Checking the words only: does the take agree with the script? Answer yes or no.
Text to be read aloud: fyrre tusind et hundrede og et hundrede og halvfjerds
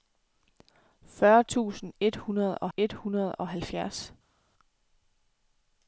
yes